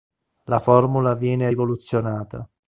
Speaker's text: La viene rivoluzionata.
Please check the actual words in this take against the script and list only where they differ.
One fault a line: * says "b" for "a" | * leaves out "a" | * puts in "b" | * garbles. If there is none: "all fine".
* puts in "formula"